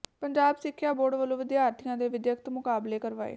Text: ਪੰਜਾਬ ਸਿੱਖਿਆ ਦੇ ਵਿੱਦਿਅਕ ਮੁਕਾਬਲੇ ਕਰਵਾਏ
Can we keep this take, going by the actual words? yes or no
no